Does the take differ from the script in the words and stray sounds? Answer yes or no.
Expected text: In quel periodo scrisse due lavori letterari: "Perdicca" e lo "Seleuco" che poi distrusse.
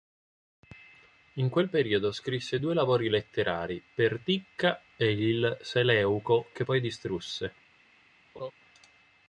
yes